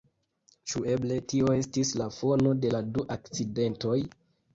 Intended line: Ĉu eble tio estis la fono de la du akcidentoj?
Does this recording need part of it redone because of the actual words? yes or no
no